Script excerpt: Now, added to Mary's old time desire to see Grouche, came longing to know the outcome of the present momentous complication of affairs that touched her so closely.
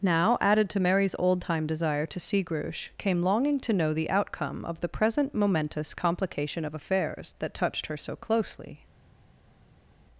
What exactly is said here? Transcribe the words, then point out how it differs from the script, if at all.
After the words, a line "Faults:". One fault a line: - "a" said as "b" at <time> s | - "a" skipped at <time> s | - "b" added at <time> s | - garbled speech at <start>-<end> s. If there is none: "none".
Now, added to Mary's old time desire to see Grouche, came longing to know the outcome of the present momentous complication of affairs that touched her so closely.
Faults:
none